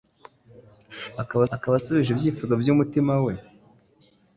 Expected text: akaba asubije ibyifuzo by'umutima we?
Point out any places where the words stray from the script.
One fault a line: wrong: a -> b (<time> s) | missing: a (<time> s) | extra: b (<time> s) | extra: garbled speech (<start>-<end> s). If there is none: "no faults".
extra: akaba (1.5 s)